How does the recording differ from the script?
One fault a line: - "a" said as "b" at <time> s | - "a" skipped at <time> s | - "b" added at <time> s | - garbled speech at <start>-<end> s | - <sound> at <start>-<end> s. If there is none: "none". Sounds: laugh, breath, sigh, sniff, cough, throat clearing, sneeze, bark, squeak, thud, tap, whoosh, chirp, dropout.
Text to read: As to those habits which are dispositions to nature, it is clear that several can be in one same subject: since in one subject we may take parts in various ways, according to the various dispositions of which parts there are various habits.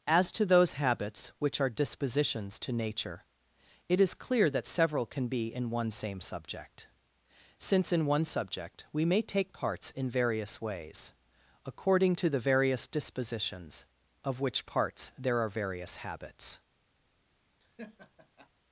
- laugh at 17.6-18.5 s